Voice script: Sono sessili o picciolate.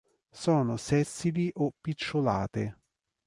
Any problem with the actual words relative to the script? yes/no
no